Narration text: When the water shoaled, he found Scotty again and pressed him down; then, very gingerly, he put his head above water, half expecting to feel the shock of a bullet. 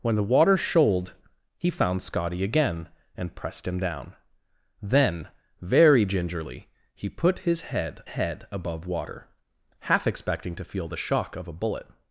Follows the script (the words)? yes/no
no